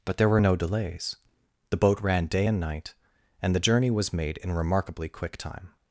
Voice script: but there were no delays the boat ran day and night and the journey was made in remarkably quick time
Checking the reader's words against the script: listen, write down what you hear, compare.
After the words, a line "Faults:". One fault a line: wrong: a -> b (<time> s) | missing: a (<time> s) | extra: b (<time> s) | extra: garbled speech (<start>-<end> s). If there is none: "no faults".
but there were no delays the boat ran day and night and the journey was made in remarkably quick time
Faults:
no faults